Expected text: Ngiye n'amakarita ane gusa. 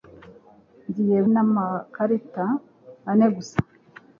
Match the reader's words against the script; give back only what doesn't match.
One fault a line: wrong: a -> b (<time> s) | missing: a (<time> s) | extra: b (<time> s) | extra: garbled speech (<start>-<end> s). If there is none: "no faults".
no faults